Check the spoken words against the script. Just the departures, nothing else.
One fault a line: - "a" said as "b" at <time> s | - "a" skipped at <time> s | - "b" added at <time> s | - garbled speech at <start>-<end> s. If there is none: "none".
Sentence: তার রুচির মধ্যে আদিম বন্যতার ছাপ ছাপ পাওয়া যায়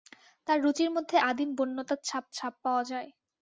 none